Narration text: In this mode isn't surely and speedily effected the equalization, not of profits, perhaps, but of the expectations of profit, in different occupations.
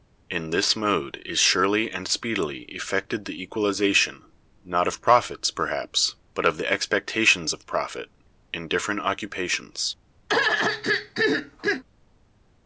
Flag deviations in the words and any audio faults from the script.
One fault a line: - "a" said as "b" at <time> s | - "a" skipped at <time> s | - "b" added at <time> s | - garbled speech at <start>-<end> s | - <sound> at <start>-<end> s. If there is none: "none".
- "isn't" said as "is" at 1.3 s
- throat clearing at 10.3-11.8 s